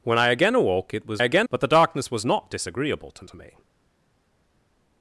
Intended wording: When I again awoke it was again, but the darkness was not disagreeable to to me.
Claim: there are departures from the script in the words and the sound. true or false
false